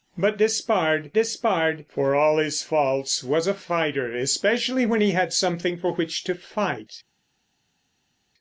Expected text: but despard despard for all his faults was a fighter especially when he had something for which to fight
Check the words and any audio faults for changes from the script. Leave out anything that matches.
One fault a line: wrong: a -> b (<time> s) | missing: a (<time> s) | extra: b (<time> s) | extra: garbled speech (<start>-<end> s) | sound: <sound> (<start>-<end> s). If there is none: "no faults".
no faults